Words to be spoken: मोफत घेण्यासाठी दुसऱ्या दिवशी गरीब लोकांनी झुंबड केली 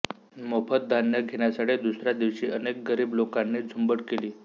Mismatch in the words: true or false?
true